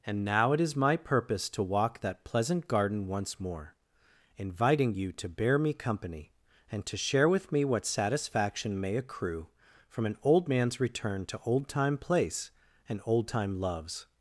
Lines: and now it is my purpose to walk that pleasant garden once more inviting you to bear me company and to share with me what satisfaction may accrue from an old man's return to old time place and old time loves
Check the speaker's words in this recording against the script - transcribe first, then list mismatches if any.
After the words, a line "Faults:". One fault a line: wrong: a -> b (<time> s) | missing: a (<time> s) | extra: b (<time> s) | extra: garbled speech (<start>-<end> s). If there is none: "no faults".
and now it is my purpose to walk that pleasant garden once more inviting you to bear me company and to share with me what satisfaction may accrue from an old man's return to old time place and old time loves
Faults:
no faults